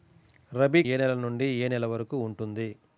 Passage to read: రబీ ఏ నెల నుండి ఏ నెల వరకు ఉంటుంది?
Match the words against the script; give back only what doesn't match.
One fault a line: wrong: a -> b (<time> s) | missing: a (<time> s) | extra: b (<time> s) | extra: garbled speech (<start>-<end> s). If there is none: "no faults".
no faults